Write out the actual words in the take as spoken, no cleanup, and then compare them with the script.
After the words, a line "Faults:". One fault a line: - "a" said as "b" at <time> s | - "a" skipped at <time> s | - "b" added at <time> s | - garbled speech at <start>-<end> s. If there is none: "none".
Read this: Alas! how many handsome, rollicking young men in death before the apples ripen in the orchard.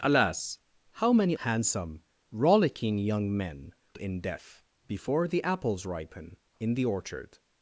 Alas! how many handsome, rollicking young men in death before the apples ripen in the orchard.
Faults:
none